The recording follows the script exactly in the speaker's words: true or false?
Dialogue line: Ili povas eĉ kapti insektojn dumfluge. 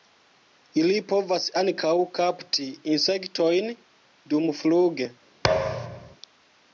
false